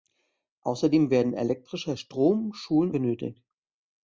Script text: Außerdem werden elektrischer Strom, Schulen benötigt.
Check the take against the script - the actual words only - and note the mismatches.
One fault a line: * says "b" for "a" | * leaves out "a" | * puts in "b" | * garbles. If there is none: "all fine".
all fine